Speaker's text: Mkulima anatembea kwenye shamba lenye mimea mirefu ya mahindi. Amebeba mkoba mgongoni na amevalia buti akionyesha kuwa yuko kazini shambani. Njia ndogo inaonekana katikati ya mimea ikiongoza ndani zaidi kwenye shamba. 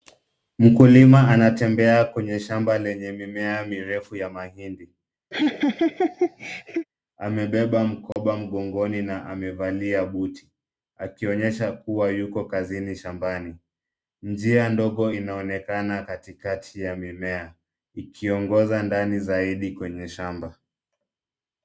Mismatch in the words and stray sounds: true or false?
true